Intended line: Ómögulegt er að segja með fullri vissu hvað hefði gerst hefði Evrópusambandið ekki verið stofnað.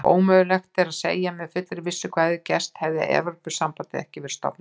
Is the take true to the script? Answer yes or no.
yes